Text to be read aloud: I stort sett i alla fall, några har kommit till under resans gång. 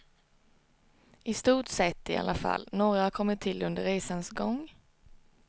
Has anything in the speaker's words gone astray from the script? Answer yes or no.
no